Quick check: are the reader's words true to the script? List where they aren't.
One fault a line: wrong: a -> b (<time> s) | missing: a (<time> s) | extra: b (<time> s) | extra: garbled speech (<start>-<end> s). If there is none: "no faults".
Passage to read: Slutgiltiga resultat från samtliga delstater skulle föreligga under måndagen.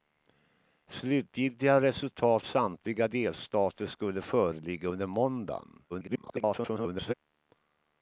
missing: från (2.4 s)
extra: garbled speech (5.9-7.1 s)